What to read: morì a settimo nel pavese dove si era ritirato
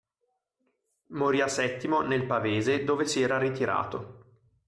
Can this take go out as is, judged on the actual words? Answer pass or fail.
pass